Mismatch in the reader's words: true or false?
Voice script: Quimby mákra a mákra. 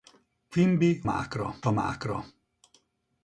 false